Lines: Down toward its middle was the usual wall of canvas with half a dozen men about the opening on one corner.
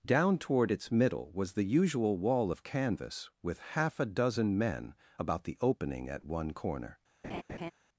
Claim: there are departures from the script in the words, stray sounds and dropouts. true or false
true